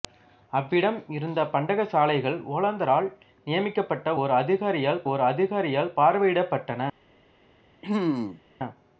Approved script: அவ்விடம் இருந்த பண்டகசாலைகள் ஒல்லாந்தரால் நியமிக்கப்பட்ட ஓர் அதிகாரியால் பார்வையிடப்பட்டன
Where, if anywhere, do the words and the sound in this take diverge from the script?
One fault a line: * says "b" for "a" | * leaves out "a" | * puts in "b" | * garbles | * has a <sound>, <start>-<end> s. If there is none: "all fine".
* puts in "ஓர் அதிகாரியால்"
* has a throat clearing, 7.8-8.4 s